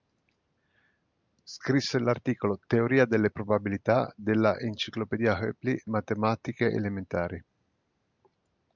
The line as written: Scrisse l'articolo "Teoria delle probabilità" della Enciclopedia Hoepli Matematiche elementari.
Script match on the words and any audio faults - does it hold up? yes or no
yes